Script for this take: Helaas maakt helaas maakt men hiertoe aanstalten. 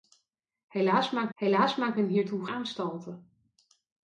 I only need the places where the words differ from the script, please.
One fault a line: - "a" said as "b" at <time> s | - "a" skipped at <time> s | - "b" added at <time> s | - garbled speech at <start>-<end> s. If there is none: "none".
none